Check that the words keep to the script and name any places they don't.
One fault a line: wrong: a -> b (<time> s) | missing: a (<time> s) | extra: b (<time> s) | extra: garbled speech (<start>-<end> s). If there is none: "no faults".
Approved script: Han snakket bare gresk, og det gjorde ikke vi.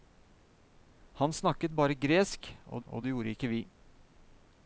extra: og (2.9 s)